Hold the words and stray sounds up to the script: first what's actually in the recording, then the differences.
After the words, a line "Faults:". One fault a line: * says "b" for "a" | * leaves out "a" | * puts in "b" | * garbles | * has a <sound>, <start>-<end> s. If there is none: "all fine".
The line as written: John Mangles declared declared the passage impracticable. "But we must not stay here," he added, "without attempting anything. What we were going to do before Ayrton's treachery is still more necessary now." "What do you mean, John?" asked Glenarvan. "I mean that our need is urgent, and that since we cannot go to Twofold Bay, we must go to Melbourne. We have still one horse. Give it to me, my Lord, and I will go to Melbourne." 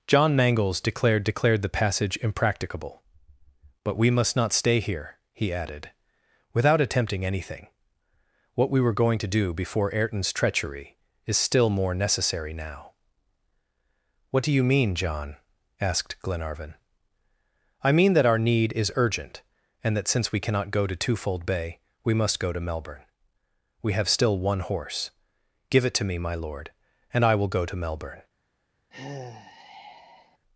John Mangles declared declared the passage impracticable. "But we must not stay here," he added, "without attempting anything. What we were going to do before Ayrton's treachery is still more necessary now." "What do you mean, John?" asked Glenarvan. "I mean that our need is urgent, and that since we cannot go to Twofold Bay, we must go to Melbourne. We have still one horse. Give it to me, my Lord, and I will go to Melbourne."
Faults:
* has a sigh, 28.9-30.4 s